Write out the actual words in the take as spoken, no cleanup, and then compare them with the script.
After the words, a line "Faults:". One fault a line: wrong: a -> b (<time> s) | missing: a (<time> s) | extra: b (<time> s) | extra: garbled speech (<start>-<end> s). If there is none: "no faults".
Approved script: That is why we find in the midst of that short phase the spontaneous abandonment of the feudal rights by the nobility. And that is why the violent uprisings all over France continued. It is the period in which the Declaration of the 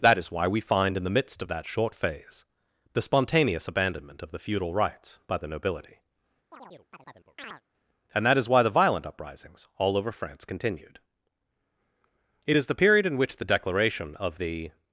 That is why we find in the midst of that short phase the spontaneous abandonment of the feudal rights by the nobility. And that is why the violent uprisings all over France continued. It is the period in which the Declaration of the
Faults:
no faults